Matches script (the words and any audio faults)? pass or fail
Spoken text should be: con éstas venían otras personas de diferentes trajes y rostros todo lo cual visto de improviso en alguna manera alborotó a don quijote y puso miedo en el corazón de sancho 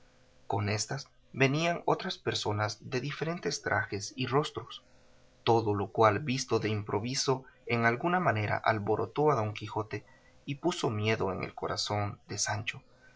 pass